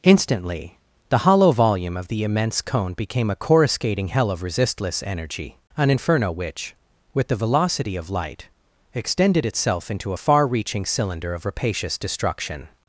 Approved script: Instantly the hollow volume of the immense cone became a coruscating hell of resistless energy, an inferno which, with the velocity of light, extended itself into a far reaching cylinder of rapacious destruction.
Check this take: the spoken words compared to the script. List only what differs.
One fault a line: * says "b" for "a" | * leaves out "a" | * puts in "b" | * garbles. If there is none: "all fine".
all fine